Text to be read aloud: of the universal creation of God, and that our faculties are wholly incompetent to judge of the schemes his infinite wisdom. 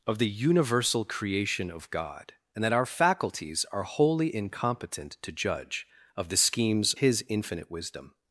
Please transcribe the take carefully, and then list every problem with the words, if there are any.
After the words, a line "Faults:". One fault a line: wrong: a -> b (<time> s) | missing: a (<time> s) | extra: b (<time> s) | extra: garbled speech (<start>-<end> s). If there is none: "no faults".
of the universal creation of God, and that our faculties are wholly incompetent to judge of the schemes his infinite wisdom.
Faults:
no faults